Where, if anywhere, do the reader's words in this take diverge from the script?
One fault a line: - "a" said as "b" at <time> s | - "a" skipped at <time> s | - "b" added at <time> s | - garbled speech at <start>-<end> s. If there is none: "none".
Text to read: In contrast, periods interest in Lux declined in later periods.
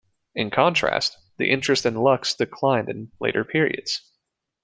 - "periods" said as "the" at 1.4 s